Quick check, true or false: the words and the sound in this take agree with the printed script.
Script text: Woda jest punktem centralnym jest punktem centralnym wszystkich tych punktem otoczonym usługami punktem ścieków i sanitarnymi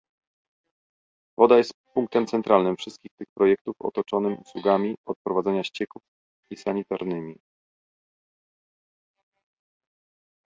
false